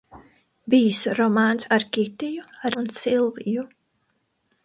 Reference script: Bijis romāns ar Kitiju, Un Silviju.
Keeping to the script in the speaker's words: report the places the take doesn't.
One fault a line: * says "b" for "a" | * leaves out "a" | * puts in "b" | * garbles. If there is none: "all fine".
all fine